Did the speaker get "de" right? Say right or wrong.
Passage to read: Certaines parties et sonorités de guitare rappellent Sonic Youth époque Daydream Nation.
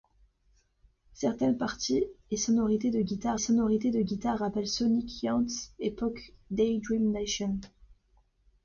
right